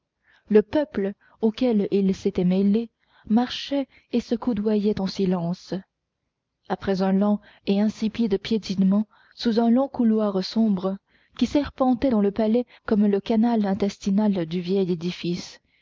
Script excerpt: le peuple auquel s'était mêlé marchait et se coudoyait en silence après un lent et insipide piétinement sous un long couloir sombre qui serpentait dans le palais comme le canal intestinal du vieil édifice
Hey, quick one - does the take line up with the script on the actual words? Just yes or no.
no